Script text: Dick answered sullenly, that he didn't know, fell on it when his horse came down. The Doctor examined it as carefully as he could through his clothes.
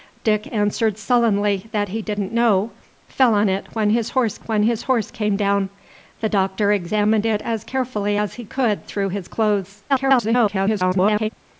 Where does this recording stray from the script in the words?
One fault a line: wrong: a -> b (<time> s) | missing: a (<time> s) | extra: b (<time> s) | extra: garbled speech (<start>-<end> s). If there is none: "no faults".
extra: when his horse (4.5 s)
extra: garbled speech (9.9-11.3 s)